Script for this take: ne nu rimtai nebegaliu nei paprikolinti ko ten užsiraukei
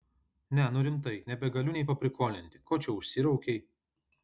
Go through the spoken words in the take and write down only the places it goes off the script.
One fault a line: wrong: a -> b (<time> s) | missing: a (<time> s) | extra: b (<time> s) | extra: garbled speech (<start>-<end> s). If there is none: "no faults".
wrong: ten -> čia (2.9 s)